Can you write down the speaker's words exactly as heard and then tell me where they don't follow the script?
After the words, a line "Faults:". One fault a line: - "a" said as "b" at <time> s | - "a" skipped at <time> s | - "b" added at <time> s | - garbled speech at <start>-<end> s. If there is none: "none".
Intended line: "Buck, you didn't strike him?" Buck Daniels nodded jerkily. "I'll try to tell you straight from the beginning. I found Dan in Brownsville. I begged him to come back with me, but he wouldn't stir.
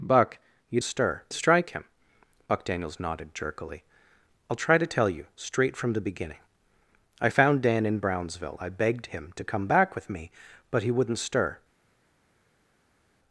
"Buck, you stir strike him?" Buck Daniels nodded jerkily. "I'll try to tell you straight from the beginning. I found Dan in Brownsville. I begged him to come back with me, but he wouldn't stir.
Faults:
- "didn't" said as "stir" at 0.8 s